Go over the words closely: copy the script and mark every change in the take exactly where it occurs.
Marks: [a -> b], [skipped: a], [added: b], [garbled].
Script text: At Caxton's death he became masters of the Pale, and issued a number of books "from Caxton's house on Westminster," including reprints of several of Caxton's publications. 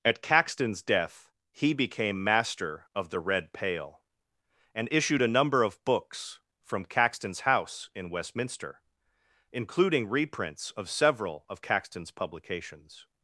At Caxton's death he became [masters -> master] of the [added: Red] Pale, and issued a number of books "from Caxton's house [on -> in] Westminster," including reprints of several of Caxton's publications.